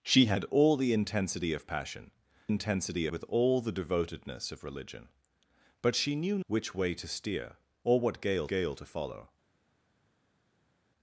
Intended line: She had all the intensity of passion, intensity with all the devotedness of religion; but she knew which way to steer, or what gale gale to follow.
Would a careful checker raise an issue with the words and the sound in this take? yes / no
no